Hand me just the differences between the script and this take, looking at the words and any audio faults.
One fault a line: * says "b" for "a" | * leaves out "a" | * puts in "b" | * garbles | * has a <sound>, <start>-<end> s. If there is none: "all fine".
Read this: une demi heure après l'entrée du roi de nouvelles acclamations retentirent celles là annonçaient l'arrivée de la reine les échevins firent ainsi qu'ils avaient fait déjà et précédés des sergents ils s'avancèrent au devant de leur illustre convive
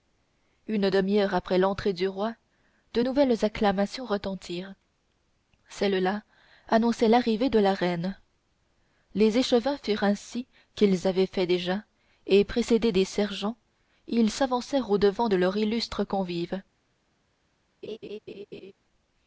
* has a laugh, 17.8-18.7 s